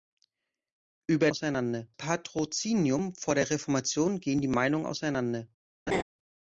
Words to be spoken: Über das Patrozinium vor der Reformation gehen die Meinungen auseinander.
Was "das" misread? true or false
true